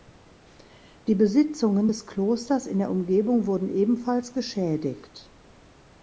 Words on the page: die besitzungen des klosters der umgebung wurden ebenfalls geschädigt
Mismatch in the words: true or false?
true